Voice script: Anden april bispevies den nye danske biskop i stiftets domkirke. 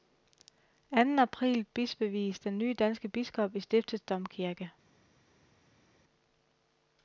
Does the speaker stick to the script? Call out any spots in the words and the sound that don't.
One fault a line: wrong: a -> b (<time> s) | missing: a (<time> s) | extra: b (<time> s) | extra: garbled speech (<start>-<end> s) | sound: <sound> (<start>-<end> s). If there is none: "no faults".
no faults